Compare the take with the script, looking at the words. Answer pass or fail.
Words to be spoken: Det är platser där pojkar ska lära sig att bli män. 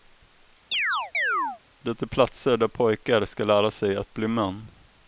pass